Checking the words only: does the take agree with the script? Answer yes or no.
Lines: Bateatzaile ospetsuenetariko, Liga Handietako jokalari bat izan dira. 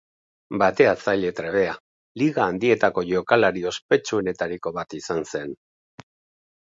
no